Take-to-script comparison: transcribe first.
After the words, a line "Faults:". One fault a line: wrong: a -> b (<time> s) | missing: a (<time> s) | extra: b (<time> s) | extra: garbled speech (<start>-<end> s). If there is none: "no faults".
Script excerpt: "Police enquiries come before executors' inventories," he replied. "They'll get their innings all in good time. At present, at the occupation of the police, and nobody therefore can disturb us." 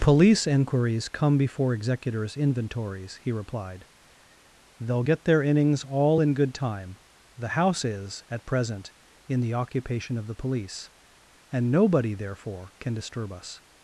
"Police enquiries come before executors' inventories," he replied. "They'll get their innings all in good time. The house is, at present, in the occupation of the police, and nobody therefore can disturb us."
Faults:
extra: The house is (7.4 s)
wrong: at -> in (9.3 s)